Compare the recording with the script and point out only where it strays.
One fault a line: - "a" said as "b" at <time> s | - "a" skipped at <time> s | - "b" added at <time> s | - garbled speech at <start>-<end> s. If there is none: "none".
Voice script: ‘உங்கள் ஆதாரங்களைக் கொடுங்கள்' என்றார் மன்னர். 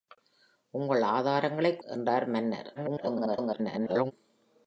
- "கொடுங்கள்" skipped at 1.8 s
- garbled speech at 2.7-4.1 s